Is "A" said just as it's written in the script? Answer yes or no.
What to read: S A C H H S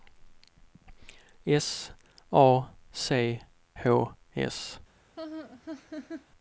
yes